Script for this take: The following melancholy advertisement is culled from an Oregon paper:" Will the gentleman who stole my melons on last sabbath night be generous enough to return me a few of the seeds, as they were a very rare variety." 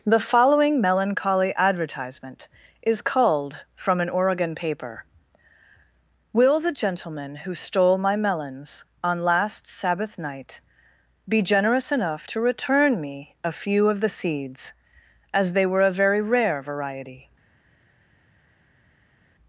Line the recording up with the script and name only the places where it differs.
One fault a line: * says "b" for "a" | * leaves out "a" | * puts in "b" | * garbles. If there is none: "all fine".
all fine